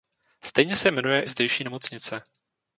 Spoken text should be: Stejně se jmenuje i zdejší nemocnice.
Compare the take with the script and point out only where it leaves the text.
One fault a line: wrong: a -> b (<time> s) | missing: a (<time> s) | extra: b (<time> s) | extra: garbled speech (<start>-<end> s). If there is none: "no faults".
missing: i (1.2 s)